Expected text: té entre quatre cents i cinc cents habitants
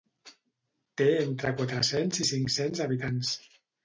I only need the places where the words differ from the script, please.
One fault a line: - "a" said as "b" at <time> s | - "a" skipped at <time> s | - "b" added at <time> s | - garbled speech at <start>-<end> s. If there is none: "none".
none